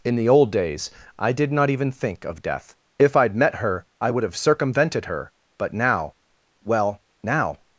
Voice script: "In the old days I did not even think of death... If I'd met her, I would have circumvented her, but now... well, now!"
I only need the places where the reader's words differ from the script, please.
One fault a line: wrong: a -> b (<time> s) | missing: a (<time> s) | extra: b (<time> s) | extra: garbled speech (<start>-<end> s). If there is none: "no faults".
no faults